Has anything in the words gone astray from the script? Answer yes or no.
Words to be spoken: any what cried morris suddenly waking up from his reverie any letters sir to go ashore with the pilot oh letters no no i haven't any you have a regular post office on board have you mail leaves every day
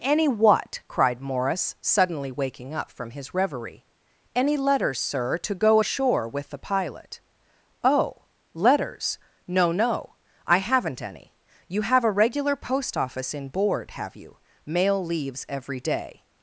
yes